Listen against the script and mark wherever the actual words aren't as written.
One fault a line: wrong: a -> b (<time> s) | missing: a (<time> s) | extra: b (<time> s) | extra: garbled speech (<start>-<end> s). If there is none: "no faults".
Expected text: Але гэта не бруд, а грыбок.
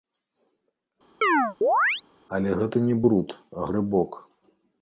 no faults